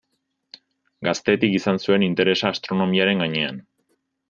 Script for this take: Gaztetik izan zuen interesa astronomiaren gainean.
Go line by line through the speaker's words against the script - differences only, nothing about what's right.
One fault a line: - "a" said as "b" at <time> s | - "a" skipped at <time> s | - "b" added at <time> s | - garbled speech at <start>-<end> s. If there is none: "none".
none